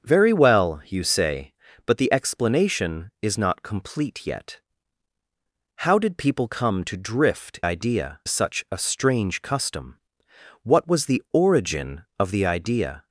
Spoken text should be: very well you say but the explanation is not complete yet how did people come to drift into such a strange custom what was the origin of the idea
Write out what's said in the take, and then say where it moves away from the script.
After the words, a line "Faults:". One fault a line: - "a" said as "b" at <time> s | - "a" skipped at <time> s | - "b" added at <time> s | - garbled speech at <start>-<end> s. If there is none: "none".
very well you say but the explanation is not complete yet how did people come to drift idea such a strange custom what was the origin of the idea
Faults:
- "into" said as "idea" at 7.6 s